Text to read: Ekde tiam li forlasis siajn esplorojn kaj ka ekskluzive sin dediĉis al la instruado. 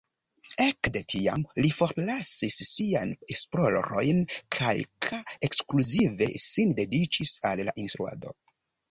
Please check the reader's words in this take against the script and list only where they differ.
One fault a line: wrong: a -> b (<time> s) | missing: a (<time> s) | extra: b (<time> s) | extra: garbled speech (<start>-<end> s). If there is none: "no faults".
no faults